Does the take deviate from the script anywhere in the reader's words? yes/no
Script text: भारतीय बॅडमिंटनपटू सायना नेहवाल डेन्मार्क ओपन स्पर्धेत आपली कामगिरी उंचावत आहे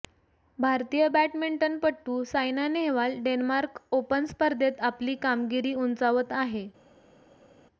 no